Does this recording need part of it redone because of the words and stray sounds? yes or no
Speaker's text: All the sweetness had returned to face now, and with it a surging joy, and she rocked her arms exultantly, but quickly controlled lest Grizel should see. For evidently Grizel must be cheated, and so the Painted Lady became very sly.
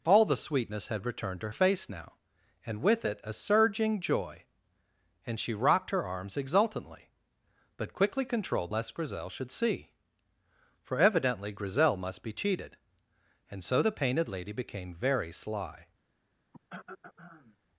yes